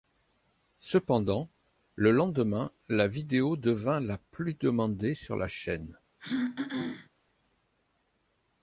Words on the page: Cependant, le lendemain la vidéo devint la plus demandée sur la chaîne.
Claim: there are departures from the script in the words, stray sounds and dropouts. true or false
true